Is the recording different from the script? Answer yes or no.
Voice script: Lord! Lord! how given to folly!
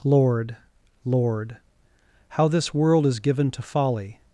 yes